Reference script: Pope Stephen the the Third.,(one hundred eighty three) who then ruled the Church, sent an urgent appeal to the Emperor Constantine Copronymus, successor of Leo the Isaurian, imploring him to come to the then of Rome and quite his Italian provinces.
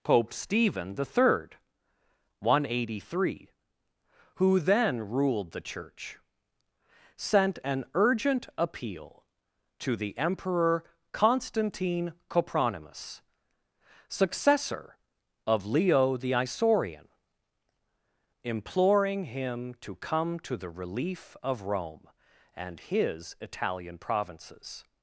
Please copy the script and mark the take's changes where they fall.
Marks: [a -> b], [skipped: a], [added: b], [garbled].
Pope Stephen the [skipped: the] Third.,(one hundred eighty three) who then ruled the Church, sent an urgent appeal to the Emperor Constantine Copronymus, successor of Leo the Isaurian, imploring him to come to the [then -> relief] of Rome and [skipped: quite] his Italian provinces.